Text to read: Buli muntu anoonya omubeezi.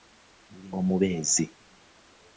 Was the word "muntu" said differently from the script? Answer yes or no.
yes